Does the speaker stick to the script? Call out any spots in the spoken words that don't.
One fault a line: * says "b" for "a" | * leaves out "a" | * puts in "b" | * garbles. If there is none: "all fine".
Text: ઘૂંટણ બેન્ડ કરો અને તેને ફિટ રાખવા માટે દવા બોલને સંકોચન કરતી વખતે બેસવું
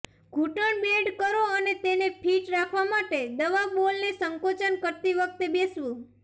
all fine